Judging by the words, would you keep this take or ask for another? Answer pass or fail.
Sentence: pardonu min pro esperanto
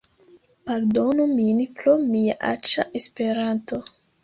fail